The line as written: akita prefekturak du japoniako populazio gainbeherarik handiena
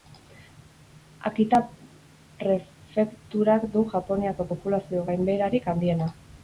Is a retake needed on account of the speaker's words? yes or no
no